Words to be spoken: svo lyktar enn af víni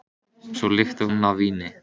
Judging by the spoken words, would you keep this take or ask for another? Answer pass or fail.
pass